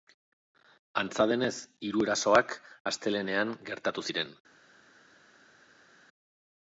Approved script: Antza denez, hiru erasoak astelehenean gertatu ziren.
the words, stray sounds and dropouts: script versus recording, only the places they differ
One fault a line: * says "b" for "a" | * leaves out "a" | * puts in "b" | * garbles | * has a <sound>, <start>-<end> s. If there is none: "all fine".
all fine